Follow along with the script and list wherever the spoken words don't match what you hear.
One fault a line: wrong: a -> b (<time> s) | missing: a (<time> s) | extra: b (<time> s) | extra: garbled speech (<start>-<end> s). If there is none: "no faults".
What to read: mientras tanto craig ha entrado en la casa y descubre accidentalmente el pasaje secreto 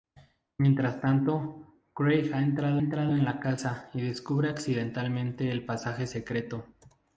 extra: entrado (2.8 s)